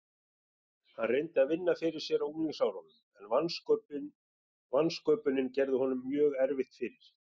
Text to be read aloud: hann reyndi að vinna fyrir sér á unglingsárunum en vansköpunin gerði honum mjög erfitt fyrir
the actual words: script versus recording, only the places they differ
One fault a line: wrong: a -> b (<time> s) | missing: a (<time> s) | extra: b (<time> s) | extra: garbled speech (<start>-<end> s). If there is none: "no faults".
no faults